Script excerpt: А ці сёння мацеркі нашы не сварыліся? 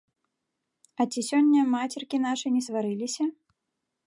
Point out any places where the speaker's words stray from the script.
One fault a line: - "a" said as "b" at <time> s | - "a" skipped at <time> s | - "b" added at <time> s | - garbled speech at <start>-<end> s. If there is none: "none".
none